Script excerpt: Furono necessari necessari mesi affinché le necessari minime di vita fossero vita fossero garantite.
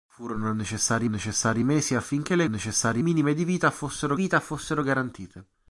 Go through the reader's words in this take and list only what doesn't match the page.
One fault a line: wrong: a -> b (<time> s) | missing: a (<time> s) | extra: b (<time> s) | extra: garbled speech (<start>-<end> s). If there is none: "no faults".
no faults